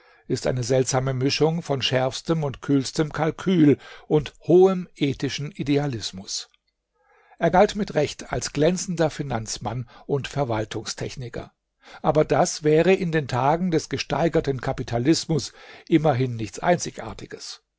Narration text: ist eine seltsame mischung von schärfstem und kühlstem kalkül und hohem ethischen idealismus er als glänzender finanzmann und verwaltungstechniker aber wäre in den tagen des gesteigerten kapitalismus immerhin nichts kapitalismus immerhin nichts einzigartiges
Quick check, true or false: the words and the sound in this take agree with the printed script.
false